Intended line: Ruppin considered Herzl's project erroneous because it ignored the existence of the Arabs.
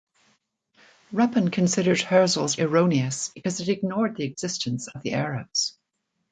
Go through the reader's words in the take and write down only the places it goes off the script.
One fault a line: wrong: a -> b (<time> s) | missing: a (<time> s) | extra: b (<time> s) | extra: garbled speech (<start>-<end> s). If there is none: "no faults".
missing: project (2.5 s)